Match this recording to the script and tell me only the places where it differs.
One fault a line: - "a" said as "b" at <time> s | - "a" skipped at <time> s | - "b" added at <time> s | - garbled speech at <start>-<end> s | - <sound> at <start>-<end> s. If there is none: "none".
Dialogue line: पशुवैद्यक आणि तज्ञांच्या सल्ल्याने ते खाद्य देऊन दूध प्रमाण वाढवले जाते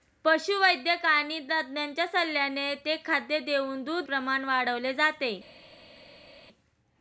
none